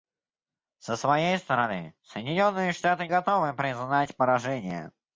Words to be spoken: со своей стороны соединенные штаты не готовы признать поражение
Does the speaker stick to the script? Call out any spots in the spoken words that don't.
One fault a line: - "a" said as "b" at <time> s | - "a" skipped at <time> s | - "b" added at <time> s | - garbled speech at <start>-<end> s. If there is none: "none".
- "не" skipped at 3.1 s